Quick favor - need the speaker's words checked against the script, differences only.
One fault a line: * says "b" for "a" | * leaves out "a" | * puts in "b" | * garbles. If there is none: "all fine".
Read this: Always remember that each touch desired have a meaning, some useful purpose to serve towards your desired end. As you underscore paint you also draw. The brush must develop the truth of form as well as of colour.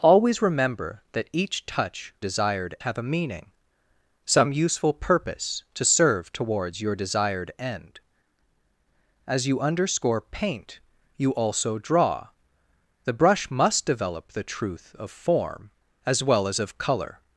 all fine